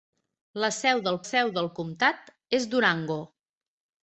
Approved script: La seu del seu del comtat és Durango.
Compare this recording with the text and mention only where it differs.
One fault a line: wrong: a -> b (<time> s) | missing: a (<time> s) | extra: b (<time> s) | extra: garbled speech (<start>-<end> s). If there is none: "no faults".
no faults